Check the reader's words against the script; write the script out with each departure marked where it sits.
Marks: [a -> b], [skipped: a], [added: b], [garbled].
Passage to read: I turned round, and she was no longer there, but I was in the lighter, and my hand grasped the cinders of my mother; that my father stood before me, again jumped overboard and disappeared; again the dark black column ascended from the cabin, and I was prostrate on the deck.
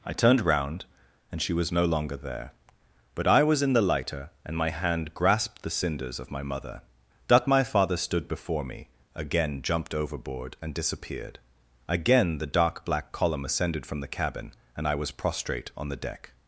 I turned round, and she was no longer there, but I was in the lighter, and my hand grasped the cinders of my mother; that my father stood before me, again jumped overboard and disappeared; again the dark black column ascended from the cabin, and I was prostrate on the deck.